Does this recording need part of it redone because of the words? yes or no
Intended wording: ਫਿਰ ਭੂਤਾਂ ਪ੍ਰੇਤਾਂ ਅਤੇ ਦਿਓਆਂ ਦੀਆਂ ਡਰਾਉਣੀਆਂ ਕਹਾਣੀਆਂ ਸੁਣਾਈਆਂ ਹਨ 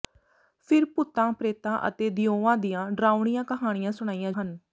no